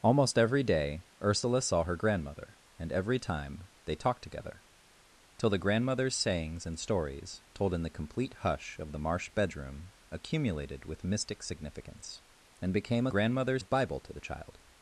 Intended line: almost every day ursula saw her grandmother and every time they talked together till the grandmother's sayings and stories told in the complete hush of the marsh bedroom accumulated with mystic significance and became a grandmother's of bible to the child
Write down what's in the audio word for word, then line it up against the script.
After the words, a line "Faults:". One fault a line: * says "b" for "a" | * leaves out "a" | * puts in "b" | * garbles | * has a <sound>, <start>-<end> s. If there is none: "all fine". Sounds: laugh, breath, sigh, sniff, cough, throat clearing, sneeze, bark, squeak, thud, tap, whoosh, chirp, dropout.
almost every day ursula saw her grandmother and every time they talked together till the grandmother's sayings and stories told in the complete hush of the marsh bedroom accumulated with mystic significance and became a grandmother's of bible to the child
Faults:
all fine